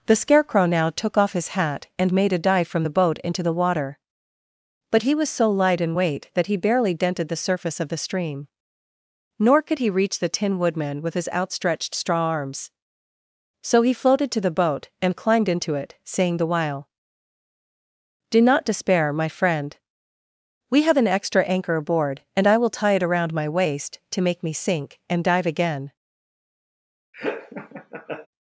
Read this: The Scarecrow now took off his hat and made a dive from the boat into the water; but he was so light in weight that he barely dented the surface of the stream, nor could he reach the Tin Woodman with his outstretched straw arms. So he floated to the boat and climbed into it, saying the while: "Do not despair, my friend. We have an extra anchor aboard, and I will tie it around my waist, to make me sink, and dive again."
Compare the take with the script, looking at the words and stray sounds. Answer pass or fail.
fail